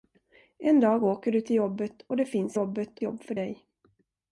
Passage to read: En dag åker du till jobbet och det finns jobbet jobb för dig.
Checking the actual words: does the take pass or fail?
pass